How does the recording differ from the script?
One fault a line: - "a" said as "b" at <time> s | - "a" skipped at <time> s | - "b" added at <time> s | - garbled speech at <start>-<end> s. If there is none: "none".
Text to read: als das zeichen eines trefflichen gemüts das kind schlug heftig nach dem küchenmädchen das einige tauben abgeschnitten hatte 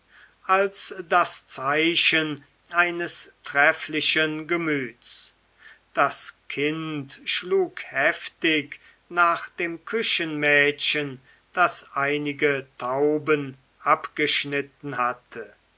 none